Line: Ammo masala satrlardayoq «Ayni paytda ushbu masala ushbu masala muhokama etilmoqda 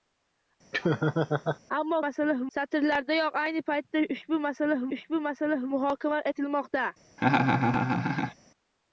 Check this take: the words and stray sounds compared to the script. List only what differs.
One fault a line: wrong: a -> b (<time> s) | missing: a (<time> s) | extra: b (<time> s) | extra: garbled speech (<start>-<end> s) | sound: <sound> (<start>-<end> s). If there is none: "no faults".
sound: laugh (0.7-1.6 s)
sound: laugh (7.2-8.3 s)